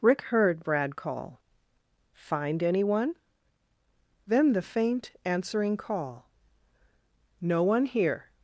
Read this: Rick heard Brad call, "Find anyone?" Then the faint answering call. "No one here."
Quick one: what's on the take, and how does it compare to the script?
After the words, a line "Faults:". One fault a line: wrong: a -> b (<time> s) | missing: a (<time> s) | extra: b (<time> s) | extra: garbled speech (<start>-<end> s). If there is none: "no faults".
Rick heard Brad call, "Find anyone?" Then the faint answering call. "No one here."
Faults:
no faults